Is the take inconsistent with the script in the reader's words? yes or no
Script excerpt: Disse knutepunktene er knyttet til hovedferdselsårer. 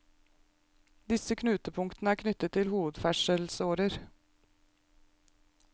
no